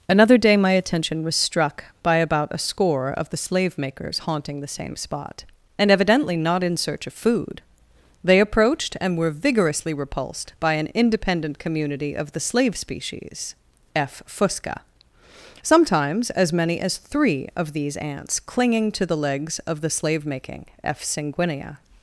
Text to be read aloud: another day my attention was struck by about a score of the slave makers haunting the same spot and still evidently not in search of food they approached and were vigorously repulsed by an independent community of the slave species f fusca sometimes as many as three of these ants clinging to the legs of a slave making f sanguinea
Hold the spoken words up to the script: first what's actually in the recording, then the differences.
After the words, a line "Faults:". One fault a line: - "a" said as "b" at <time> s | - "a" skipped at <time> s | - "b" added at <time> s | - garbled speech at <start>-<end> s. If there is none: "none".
another day my attention was struck by about a score of the slave makers haunting the same spot and evidently not in search of food they approached and were vigorously repulsed by an independent community of the slave species f fusca sometimes as many as three of these ants clinging to the legs of the slave making f sanguinea
Faults:
- "still" skipped at 5.9 s
- "a" said as "the" at 19.8 s